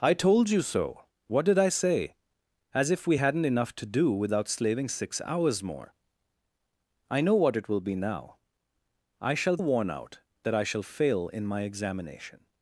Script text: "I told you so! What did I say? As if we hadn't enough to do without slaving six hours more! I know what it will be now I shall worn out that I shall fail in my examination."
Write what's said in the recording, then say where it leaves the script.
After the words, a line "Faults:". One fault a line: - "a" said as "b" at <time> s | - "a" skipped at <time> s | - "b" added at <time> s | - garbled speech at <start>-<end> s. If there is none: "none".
"I told you so! What did I say? As if we hadn't enough to do without slaving six hours more! I know what it will be now I shall worn out that I shall fail in my examination."
Faults:
none